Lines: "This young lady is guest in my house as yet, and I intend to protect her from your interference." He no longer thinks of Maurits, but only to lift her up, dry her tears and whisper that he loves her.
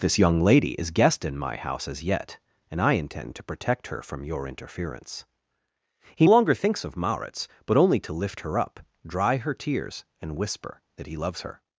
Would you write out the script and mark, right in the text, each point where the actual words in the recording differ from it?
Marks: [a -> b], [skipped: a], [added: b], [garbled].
"This young lady is guest in my house as yet, and I intend to protect her from your interference." He [skipped: no] longer thinks of Maurits, but only to lift her up, dry her tears and whisper that he loves her.